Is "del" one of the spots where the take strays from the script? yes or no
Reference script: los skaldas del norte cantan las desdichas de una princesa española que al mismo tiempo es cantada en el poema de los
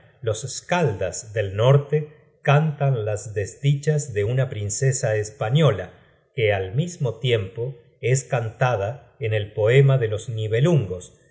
no